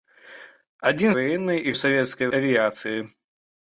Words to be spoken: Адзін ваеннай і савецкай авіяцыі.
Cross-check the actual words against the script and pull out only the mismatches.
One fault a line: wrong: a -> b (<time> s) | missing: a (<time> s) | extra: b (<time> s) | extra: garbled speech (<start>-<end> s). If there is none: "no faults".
no faults